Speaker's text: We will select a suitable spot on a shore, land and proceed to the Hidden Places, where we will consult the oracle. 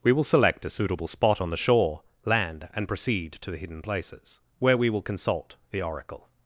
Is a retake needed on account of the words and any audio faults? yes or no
yes